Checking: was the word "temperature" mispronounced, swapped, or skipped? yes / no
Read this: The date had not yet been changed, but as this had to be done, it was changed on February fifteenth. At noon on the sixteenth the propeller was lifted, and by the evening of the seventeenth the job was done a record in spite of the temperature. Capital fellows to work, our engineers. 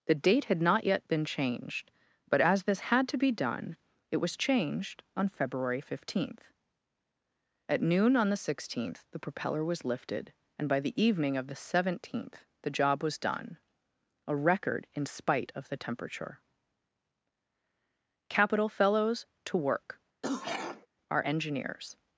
no